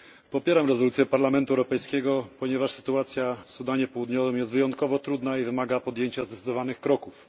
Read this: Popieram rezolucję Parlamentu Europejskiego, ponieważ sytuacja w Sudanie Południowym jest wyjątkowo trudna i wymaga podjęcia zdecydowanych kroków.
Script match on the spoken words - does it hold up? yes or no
yes